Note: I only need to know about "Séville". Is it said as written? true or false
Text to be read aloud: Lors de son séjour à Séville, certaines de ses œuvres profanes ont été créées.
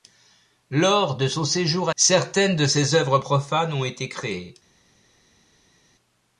false